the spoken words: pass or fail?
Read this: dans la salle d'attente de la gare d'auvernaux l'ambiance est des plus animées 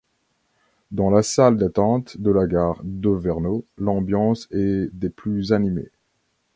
pass